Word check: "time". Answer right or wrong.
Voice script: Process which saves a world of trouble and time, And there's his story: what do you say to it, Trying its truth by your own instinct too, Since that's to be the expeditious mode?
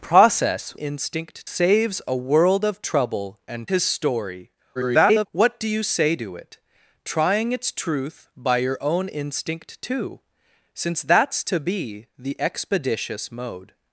wrong